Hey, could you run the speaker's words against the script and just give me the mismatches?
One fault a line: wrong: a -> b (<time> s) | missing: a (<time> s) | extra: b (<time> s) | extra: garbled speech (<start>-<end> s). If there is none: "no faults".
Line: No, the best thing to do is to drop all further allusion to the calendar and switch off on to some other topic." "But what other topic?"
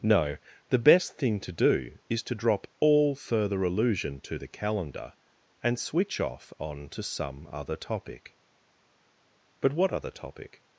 no faults